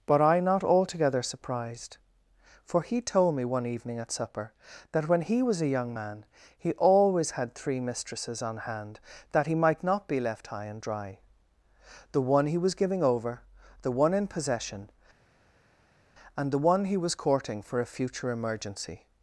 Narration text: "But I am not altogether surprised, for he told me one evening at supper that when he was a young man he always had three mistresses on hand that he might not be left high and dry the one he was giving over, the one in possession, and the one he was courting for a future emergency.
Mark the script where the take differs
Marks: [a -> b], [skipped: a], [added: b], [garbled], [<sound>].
"But I [skipped: am] not altogether surprised, for he told me one evening at supper that when he was a young man he always had three mistresses on hand that he might not be left high and dry the one he was giving over, the one in possession, and the one he was courting for a future emergency.